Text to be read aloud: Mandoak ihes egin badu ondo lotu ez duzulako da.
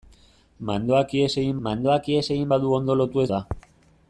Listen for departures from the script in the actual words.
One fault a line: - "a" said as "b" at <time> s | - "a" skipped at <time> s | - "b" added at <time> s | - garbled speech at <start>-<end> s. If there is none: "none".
- "mandoak ihes egin" added at 1.7 s
- "duzulako" skipped at 3.3 s